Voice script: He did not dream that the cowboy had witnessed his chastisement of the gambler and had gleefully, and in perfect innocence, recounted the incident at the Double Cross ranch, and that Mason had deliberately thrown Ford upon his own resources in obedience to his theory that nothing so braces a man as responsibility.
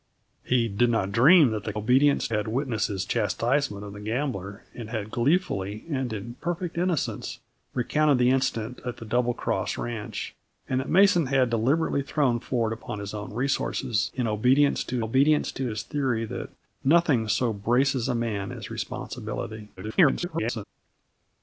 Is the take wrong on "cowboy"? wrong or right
wrong